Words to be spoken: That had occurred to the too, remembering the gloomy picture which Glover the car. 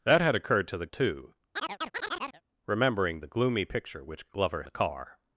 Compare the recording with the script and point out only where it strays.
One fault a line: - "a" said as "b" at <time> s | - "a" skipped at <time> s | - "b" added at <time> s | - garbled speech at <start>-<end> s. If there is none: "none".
none